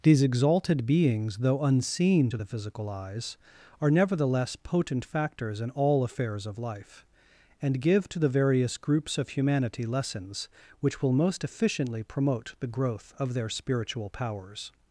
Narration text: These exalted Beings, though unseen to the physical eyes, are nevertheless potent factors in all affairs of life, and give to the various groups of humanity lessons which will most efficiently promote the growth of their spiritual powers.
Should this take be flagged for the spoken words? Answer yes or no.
no